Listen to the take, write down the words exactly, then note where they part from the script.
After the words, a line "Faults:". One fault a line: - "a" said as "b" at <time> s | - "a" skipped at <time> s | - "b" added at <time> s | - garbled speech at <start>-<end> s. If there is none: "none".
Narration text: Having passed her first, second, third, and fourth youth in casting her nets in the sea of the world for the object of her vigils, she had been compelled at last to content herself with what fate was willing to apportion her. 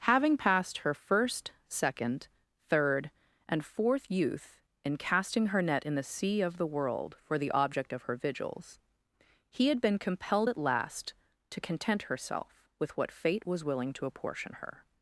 Having passed her first, second, third, and fourth youth in casting her net in the sea of the world for the object of her vigils, he had been compelled at last to content herself with what fate was willing to apportion her.
Faults:
- "nets" said as "net" at 5.6 s
- "she" said as "he" at 9.5 s